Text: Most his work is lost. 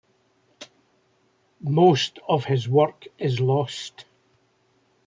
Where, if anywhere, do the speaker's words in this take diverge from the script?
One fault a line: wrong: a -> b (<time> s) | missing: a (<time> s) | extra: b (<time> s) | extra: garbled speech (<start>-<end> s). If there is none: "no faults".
extra: of (2.3 s)